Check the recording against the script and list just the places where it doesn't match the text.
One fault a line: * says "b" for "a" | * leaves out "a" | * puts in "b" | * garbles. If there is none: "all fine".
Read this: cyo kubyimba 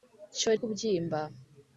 all fine